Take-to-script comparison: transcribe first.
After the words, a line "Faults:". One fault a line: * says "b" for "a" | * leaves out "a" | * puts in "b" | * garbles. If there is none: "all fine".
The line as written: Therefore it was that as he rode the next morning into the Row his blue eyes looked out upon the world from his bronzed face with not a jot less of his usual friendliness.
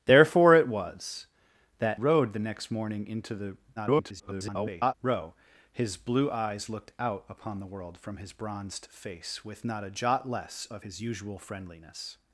Therefore it was that rode the next morning into the [garbled] Row his blue eyes looked out upon the world from his bronzed face with not a jot less of his usual friendliness.
Faults:
* leaves out "as he"
* garbles